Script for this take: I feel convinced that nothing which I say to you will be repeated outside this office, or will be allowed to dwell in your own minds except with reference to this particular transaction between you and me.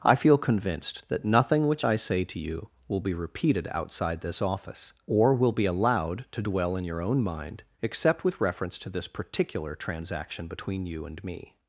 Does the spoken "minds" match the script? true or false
false